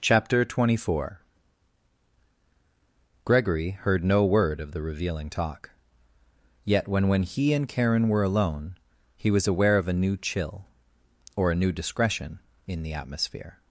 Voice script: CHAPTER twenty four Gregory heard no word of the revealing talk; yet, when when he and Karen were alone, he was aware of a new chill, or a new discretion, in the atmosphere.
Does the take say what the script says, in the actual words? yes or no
yes